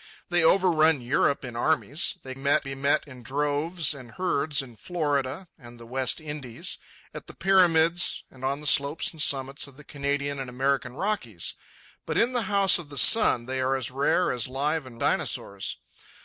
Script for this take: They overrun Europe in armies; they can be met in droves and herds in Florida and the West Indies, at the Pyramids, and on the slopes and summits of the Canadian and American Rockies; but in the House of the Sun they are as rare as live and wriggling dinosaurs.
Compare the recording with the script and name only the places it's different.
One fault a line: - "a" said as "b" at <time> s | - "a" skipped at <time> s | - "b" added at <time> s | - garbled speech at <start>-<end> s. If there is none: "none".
- "can" said as "met" at 2.4 s
- "wriggling" skipped at 15.0 s